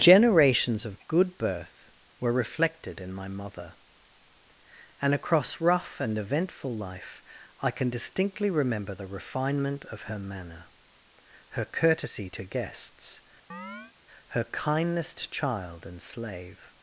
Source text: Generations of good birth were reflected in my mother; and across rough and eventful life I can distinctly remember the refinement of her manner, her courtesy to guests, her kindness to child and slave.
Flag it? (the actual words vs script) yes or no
no